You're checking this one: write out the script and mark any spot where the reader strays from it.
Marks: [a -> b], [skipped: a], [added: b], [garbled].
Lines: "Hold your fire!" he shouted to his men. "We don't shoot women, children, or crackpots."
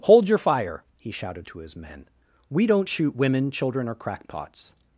"Hold your fire!" he shouted to his men. "We don't shoot women, children, or crackpots."